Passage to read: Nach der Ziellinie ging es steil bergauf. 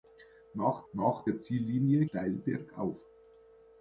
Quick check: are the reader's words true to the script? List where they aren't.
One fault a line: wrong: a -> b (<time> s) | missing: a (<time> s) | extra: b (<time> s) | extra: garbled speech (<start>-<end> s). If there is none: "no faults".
extra: nach (0.9 s)
missing: ging es (2.0 s)